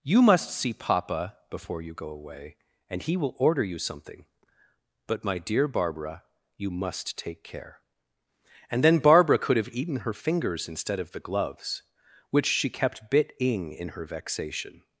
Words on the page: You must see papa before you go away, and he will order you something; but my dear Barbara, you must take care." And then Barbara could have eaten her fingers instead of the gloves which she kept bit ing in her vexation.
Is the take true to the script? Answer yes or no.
yes